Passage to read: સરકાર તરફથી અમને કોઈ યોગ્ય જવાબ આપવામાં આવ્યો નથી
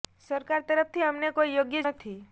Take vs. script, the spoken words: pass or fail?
fail